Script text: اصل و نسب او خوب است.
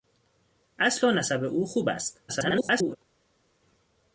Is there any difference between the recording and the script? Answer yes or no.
yes